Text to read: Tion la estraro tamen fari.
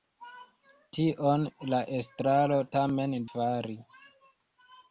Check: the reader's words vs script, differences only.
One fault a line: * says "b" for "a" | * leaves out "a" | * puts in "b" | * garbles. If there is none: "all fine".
all fine